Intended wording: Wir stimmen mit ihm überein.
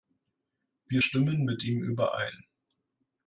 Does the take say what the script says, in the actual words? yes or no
yes